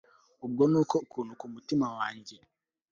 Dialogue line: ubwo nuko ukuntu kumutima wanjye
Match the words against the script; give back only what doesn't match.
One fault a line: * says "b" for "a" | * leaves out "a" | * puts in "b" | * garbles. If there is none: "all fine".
all fine